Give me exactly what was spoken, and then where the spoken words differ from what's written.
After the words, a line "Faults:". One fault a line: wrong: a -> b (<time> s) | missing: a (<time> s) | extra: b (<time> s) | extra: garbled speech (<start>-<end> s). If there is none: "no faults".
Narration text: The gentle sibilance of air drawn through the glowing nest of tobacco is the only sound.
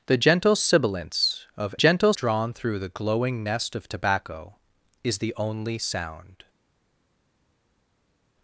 The gentle sibilance of gentle drawn through the glowing nest of tobacco is the only sound.
Faults:
wrong: air -> gentle (1.7 s)